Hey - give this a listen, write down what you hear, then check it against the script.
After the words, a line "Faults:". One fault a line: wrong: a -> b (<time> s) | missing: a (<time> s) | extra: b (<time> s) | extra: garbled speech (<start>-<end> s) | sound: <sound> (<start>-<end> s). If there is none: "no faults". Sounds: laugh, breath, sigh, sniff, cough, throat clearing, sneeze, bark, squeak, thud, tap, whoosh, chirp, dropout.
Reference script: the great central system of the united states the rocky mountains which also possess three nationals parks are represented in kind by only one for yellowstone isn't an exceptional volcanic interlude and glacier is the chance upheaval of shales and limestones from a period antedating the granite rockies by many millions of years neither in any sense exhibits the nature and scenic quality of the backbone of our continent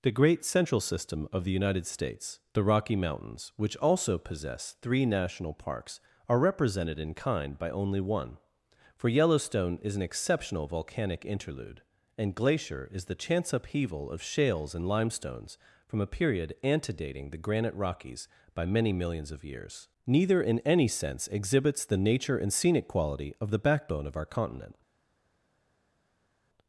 the great central system of the united states the rocky mountains which also possess three national parks are represented in kind by only one for yellowstone is an exceptional volcanic interlude and glacier is the chance upheaval of shales and limestones from a period antedating the granite rockies by many millions of years neither in any sense exhibits the nature and scenic quality of the backbone of our continent
Faults:
wrong: nationals -> national (5.0 s)
wrong: isn't -> is (9.8 s)